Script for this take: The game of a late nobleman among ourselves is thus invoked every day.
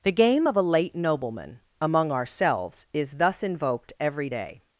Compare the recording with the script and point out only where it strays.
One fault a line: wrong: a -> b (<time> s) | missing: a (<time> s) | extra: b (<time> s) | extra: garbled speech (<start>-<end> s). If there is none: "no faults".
no faults